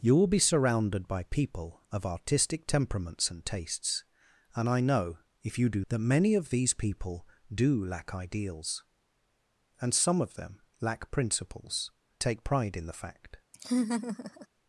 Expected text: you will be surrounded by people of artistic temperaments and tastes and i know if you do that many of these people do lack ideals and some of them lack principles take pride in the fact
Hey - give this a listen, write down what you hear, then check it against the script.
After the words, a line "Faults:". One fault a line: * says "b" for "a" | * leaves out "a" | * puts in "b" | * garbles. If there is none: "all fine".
you will be surrounded by people of artistic temperaments and tastes and i know if you do that many of these people do lack ideals and some of them lack principles take pride in the fact
Faults:
all fine